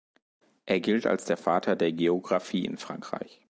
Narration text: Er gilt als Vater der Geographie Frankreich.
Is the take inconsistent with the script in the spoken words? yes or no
yes